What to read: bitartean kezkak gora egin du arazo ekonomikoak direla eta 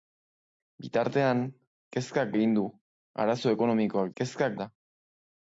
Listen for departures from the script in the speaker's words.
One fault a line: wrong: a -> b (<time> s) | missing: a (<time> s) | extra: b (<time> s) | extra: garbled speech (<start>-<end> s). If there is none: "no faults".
missing: gora (2.3 s)
wrong: direla -> kezkak (4.2 s)